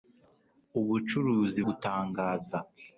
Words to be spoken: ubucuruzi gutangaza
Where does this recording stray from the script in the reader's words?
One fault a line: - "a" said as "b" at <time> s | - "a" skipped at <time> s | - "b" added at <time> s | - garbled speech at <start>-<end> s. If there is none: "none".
none